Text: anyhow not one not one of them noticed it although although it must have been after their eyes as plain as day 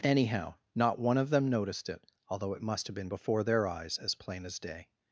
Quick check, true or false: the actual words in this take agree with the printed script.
false